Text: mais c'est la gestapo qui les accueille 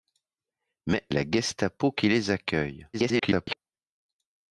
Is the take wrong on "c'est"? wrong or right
wrong